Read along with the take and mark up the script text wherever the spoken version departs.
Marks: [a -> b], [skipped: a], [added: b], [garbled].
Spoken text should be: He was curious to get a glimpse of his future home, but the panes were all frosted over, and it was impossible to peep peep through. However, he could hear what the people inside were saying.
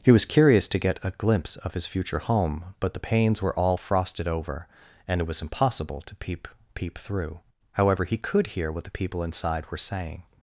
He was curious to get a glimpse of his future home, but the panes were all frosted over, and it was impossible to peep peep through. However, he could hear what the people inside were saying.